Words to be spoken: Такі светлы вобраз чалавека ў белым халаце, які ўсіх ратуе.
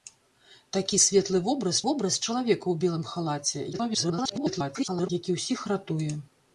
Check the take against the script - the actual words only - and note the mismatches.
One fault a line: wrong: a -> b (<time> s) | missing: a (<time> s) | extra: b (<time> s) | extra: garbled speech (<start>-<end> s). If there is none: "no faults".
extra: вобраз (1.9 s)
extra: garbled speech (3.7-5.1 s)